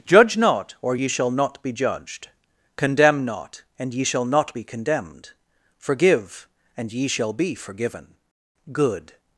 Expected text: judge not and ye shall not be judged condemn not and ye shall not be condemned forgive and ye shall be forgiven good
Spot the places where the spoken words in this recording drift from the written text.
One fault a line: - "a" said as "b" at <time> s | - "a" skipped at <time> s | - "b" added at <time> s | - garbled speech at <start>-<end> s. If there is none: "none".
- "and" said as "or" at 0.8 s